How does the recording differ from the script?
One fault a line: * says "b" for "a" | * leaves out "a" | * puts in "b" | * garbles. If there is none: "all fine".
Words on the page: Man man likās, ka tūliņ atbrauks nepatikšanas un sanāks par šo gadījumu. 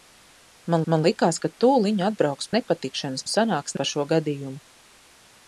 all fine